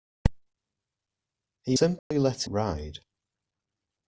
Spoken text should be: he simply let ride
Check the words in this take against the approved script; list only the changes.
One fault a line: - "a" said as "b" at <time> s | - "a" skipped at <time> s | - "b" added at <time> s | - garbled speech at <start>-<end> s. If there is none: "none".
none